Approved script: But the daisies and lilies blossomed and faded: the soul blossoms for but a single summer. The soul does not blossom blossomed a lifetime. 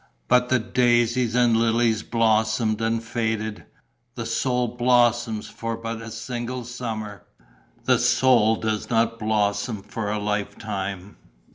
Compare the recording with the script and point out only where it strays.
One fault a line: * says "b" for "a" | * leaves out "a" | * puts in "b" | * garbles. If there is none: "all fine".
* says "for" for "blossomed"